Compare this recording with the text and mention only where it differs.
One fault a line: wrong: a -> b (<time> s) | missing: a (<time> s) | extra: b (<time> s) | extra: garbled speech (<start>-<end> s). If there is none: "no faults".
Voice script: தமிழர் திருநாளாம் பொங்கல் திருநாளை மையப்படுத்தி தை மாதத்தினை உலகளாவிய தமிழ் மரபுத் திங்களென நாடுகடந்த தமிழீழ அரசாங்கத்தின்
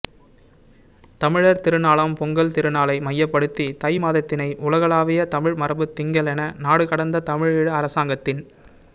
no faults